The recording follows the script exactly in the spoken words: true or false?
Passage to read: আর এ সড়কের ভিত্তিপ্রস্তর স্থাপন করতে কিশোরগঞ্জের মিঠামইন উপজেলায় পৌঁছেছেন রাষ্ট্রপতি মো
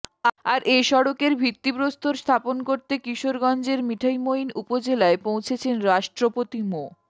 true